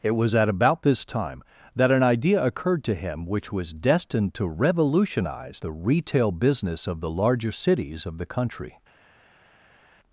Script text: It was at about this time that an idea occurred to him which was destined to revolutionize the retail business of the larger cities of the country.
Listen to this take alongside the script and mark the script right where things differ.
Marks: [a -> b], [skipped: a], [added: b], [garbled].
It was at about this time that an idea occurred to him which was destined to revolutionize the retail business of the larger cities of the country.